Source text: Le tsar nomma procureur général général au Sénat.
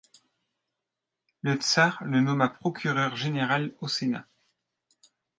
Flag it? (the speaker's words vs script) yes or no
yes